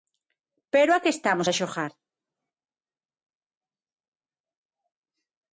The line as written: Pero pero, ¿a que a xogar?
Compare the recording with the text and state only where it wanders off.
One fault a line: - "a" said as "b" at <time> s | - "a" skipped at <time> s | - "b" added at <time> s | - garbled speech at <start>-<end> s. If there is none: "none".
- "pero" skipped at 0.9 s
- "estamos" added at 1.1 s